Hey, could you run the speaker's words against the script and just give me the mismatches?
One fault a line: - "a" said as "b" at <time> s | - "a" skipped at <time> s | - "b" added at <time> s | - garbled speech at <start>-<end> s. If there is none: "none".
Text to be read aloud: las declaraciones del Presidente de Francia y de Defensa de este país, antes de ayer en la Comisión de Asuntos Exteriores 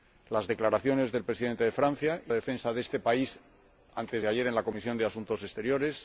none